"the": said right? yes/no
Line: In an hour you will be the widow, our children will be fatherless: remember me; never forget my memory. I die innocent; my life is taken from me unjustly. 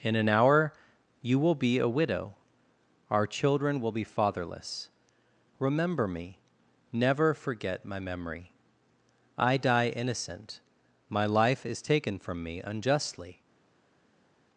no